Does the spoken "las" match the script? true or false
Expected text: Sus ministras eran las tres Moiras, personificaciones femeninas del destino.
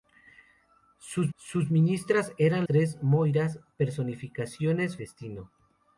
false